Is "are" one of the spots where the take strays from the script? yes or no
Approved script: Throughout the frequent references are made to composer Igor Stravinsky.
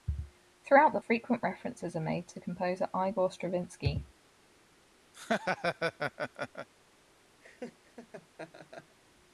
no